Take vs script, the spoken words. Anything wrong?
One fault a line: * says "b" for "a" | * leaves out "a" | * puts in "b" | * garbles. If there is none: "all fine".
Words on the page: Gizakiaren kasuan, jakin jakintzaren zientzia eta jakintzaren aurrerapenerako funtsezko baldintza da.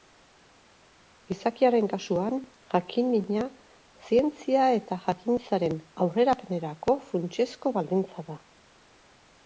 * says "mina" for "jakintzaren"